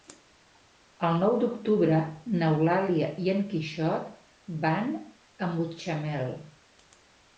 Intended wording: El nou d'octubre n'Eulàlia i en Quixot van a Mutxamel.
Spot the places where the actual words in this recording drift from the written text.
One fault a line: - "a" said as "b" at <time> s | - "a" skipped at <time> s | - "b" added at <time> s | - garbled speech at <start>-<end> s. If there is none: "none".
none